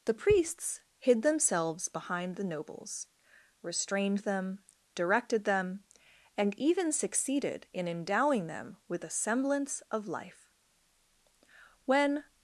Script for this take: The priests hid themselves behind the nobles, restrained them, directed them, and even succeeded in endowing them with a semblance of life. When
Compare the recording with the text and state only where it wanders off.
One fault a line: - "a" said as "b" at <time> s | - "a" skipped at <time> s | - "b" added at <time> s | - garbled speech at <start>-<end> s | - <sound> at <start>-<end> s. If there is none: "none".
none